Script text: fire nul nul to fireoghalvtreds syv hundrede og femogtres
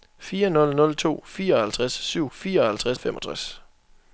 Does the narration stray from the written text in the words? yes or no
yes